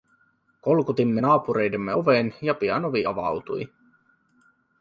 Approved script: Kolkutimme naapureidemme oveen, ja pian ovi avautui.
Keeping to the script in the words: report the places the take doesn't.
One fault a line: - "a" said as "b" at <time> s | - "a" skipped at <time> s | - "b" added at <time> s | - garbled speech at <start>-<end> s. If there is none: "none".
none